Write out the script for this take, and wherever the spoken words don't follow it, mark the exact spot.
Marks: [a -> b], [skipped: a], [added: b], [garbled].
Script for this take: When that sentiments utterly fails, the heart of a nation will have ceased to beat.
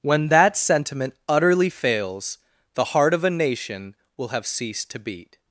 When that [sentiments -> sentiment] utterly fails, the heart of a nation will have ceased to beat.